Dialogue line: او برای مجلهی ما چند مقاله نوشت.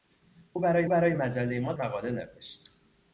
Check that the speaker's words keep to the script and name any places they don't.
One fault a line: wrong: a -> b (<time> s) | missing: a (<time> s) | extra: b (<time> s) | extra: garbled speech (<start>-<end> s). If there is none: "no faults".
extra: برای (0.9 s)
missing: چند (1.7 s)